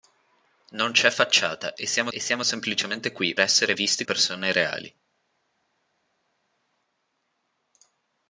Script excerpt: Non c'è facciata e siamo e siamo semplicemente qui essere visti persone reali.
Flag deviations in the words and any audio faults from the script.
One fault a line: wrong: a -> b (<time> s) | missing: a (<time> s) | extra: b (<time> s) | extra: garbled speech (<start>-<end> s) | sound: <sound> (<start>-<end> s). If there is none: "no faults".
no faults